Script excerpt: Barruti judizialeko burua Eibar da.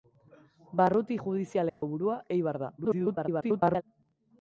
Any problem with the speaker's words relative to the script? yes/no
yes